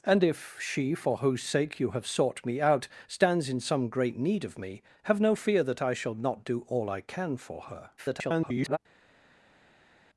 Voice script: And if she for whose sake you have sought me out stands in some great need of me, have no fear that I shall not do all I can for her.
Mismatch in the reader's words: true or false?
true